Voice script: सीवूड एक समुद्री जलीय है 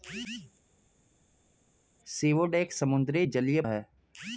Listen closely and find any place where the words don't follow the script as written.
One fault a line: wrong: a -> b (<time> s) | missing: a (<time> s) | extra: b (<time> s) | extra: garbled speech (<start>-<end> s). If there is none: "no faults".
no faults